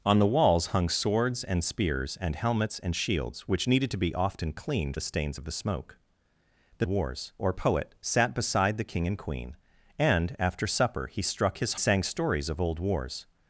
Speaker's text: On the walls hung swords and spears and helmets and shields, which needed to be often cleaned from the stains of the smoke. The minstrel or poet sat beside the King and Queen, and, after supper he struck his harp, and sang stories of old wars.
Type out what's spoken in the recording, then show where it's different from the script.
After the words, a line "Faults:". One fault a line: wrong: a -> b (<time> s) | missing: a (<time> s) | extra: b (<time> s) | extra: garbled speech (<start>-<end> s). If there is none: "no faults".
On the walls hung swords and spears and helmets and shields, which needed to be often cleaned the stains of the smoke. The wars or poet sat beside the King and Queen, and, after supper he struck his sang stories of old wars.
Faults:
missing: from (5.0 s)
wrong: minstrel -> wars (6.9 s)
missing: harp and (11.7 s)